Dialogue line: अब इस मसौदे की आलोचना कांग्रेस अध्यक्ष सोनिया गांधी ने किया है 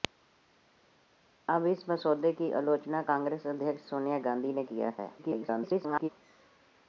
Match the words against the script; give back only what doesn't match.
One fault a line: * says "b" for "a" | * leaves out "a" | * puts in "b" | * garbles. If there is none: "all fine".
* garbles